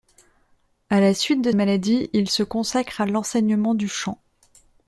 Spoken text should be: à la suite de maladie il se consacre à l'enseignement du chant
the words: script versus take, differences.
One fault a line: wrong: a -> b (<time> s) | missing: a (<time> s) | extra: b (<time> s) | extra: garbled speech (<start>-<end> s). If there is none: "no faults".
no faults